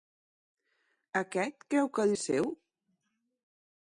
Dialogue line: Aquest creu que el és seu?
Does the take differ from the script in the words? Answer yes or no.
no